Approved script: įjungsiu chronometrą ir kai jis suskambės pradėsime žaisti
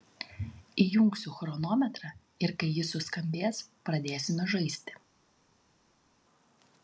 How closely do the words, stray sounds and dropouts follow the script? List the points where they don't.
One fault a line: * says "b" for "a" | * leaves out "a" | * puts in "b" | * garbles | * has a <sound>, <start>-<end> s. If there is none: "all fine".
all fine